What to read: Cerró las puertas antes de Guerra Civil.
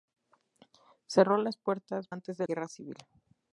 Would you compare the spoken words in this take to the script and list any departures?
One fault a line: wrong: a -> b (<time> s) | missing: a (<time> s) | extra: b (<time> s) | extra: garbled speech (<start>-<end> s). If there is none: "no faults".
no faults